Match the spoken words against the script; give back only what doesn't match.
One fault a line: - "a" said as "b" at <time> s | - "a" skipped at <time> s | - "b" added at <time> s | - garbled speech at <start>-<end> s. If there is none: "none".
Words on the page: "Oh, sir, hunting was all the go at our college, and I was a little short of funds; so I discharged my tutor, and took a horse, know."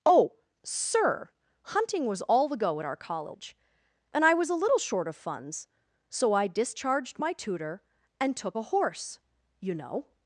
- "you" added at 9.6 s